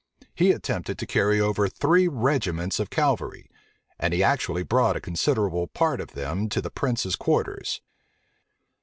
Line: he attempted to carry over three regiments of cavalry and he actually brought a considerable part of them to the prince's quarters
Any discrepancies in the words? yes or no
no